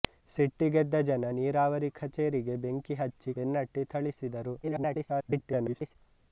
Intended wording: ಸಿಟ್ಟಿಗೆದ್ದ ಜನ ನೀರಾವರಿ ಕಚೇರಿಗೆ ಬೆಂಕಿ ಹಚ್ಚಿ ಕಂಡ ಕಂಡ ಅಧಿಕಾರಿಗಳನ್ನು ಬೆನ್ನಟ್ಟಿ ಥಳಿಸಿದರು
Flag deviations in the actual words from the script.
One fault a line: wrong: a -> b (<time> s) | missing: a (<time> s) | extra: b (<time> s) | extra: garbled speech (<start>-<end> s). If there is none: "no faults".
missing: ಕಂಡ ಕಂಡ ಅಧಿಕಾರಿಗಳನ್ನು (3.3 s)
extra: garbled speech (4.6-6.0 s)